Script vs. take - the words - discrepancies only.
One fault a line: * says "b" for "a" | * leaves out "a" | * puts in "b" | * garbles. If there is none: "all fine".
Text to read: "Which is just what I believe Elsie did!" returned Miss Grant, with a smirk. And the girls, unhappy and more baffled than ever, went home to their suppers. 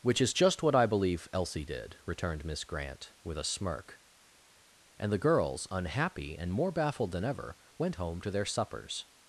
all fine